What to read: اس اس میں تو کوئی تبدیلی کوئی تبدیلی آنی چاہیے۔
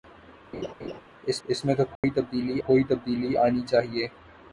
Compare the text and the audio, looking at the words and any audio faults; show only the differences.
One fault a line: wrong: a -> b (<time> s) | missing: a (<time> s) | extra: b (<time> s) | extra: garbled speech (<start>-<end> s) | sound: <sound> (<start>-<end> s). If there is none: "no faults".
sound: laugh (0.5-1.0 s)
sound: dropout (2.0-2.0 s)